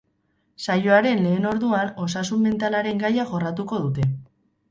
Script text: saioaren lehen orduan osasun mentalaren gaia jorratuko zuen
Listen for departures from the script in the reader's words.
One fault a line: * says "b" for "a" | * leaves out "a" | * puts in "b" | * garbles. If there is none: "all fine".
* says "dute" for "zuen"